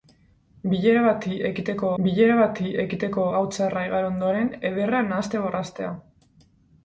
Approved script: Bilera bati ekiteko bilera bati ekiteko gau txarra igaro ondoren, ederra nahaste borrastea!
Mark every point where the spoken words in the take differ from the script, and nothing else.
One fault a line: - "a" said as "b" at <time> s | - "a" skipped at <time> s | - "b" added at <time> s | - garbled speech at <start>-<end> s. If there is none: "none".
none